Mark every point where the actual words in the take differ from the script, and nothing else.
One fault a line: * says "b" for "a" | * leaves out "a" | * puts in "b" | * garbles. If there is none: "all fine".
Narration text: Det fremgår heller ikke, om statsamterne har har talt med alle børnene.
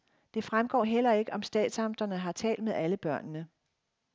* leaves out "har"